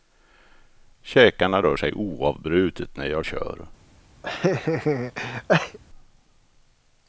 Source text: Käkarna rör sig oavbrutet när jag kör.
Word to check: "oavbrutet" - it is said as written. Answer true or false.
true